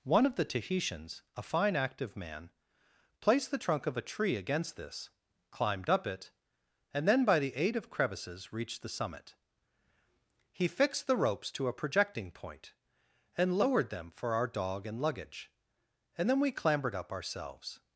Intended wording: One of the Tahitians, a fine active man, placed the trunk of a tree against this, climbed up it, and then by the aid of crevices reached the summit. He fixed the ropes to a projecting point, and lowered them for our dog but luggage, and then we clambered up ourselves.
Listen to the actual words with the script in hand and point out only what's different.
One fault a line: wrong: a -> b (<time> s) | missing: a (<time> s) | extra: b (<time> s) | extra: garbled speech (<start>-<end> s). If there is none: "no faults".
wrong: but -> and (14.8 s)